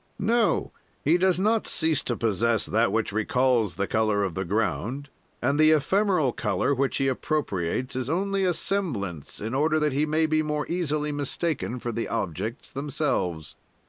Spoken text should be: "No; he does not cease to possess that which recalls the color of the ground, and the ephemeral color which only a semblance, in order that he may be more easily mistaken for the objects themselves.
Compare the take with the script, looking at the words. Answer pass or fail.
fail